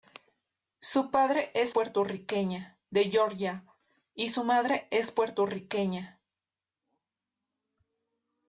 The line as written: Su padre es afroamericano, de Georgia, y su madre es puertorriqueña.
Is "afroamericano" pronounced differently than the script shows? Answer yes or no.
yes